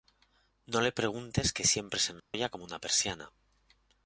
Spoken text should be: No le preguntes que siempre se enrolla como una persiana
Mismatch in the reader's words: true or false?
false